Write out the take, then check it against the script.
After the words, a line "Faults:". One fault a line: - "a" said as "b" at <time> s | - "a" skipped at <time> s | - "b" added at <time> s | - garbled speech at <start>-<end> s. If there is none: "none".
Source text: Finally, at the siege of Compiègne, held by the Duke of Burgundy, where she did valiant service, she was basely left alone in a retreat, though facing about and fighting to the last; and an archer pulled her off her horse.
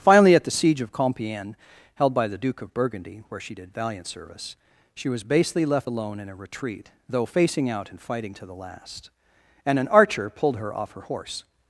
Finally, at the siege of Compiègne, held by the Duke of Burgundy, where she did valiant service, she was basely left alone in a retreat, though facing out and fighting to the last; and an archer pulled her off her horse.
Faults:
- "about" said as "out" at 7.7 s